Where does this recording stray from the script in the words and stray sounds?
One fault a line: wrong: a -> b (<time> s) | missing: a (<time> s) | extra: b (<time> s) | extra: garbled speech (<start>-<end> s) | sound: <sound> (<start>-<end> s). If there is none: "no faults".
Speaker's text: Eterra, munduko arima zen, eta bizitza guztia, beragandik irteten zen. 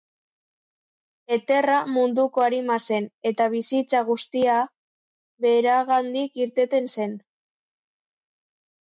no faults